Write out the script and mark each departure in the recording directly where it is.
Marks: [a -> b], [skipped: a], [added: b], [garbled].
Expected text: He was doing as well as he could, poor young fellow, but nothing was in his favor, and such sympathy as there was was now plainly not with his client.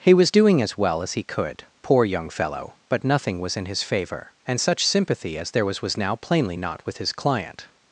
He was doing as well as he could, poor young fellow, but nothing was in his favor, and such sympathy as there was was now plainly not with his client.